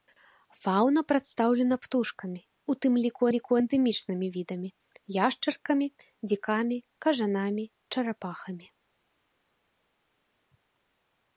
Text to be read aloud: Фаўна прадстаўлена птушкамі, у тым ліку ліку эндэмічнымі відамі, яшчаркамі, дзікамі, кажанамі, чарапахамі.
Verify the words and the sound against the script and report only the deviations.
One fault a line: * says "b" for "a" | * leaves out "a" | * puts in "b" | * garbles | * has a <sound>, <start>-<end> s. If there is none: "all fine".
all fine